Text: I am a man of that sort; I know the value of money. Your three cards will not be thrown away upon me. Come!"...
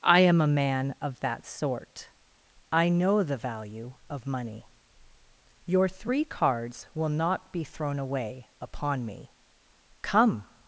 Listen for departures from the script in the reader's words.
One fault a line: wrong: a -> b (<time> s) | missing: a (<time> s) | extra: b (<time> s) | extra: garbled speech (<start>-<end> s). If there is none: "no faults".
no faults